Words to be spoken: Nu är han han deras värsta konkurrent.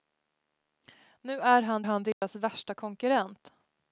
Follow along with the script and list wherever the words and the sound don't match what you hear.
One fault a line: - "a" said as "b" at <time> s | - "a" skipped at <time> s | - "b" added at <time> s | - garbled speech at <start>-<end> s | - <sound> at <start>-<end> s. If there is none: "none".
- dropout at 2.1-2.2 s